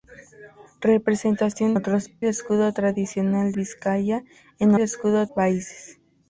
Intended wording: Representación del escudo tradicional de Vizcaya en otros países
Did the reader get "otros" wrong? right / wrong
wrong